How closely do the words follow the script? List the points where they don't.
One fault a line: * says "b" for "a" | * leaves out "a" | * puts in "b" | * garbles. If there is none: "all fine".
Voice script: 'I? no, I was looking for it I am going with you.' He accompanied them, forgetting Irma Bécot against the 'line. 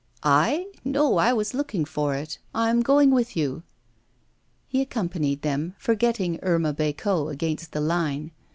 all fine